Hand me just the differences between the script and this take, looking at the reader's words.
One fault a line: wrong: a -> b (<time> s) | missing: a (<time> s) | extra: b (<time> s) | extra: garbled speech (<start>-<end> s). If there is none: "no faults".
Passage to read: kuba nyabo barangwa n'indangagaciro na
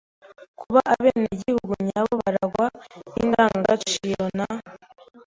extra: abenegihugu (0.9 s)